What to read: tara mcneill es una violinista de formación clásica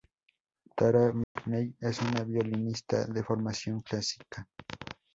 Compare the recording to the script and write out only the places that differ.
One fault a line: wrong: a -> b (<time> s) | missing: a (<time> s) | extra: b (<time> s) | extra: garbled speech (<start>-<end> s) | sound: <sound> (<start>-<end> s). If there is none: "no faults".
sound: dropout (1.2-1.4 s)